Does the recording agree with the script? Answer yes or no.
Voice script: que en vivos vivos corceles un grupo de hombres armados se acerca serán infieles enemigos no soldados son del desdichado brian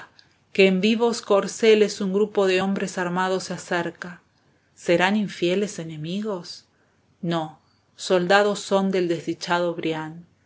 no